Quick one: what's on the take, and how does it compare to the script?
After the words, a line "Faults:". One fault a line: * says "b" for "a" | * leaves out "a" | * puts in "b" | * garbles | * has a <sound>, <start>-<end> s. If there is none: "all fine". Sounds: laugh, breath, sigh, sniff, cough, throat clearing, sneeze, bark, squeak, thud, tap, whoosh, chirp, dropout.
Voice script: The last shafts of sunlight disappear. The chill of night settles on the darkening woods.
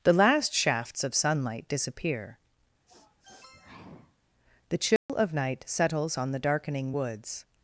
The last shafts of sunlight disappear. The chill of night settles on the darkening woods.
Faults:
* has a sniff, 2.9-4.2 s
* has a dropout, 5.0-5.1 s